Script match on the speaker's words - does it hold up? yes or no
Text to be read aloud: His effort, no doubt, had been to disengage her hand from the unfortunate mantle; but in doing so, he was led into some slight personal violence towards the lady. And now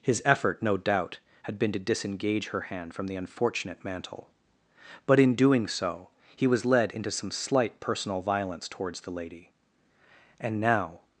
yes